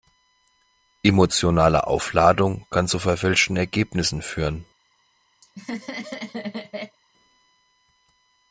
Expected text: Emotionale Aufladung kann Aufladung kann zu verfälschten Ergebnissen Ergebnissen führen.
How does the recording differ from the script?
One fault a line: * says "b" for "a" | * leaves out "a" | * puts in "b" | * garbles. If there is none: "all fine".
* leaves out "Aufladung kann"
* leaves out "Ergebnissen"